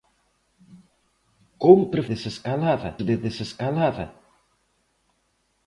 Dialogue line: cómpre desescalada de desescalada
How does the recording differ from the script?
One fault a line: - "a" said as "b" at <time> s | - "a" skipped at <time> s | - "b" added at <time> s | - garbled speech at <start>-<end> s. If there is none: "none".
none